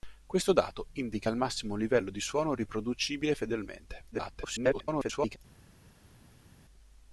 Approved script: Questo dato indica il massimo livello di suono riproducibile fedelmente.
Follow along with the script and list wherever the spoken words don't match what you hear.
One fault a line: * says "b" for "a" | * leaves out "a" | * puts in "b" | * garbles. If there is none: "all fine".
* garbles